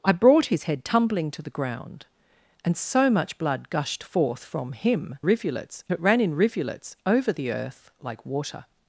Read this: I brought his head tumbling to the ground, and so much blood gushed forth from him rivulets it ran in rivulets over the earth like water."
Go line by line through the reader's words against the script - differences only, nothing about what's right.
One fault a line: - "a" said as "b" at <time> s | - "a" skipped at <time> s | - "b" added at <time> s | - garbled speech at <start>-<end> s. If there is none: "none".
none